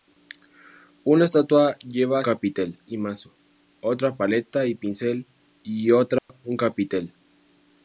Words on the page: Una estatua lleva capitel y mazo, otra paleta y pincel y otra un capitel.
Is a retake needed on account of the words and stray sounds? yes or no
yes